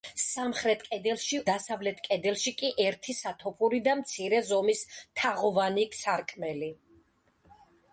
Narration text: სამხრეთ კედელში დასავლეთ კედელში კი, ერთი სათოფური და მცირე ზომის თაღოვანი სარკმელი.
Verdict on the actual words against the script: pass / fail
pass